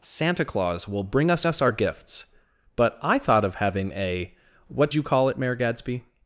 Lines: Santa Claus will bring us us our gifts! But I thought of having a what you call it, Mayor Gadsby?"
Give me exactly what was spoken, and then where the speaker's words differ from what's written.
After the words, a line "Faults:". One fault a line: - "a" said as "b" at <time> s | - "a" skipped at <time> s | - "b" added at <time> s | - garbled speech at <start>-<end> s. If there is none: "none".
Santa Claus will bring us us our gifts! But I thought of having a what you call it, Mayor Gadsby?"
Faults:
none